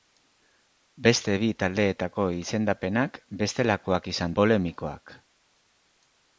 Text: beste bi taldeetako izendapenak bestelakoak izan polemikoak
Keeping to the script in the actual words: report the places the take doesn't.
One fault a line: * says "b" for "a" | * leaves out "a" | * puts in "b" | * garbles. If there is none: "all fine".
all fine